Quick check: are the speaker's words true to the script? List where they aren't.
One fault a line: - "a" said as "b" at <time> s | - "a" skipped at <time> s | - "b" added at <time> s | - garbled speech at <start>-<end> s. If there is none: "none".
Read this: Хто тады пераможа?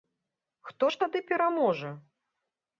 - "ж" added at 0.9 s